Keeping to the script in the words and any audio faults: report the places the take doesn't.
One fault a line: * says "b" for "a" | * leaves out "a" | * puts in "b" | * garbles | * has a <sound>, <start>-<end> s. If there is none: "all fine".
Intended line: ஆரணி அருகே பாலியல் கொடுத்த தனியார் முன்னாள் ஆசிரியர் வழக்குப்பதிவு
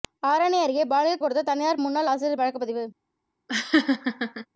* has a laugh, 3.5-4.5 s